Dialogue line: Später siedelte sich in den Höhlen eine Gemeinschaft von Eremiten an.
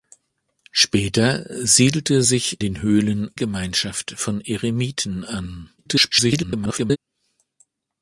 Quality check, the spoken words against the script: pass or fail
fail